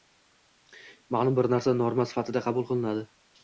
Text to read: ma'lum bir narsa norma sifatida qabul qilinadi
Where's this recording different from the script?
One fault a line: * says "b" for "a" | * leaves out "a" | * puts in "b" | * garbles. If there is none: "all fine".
all fine